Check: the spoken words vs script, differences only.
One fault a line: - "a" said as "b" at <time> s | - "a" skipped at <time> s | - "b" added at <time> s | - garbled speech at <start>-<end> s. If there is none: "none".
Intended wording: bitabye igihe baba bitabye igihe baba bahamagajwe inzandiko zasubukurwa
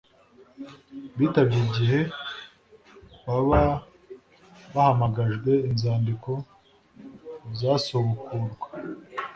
- "bitabye igihe baba" skipped at 3.6 s